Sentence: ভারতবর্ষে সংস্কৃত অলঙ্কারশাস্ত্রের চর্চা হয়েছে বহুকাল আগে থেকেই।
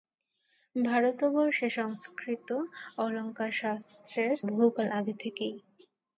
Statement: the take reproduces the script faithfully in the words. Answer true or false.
false